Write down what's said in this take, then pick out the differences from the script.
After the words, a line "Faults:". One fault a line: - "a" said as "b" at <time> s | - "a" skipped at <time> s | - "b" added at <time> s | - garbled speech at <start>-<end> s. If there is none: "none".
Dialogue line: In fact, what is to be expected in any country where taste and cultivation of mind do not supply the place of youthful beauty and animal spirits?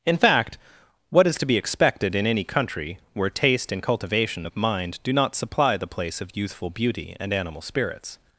In fact, what is to be expected in any country where taste and cultivation of mind do not supply the place of youthful beauty and animal spirits?
Faults:
none